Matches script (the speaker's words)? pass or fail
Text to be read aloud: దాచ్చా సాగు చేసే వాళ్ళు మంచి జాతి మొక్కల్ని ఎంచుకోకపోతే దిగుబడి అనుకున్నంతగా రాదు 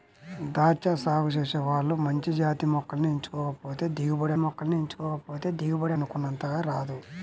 fail